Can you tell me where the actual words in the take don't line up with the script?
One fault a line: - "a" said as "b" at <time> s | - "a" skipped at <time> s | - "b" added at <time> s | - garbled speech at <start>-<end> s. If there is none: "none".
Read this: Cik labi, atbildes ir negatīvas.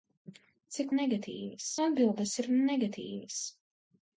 - "labi" said as "negatīvas" at 1.0 s